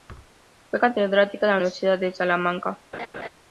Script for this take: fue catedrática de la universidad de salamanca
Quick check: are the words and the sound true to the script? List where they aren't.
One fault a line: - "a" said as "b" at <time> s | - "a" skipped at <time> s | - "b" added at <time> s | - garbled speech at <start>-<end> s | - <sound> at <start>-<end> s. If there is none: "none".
- thud at 0.1-0.3 s
- laugh at 2.9-3.3 s